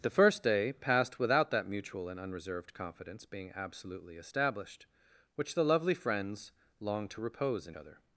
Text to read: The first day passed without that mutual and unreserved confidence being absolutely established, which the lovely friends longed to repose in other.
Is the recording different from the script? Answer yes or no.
no